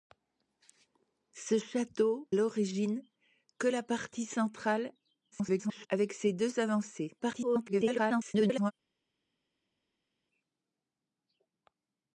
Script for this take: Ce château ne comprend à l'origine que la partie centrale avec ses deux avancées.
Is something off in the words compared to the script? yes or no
yes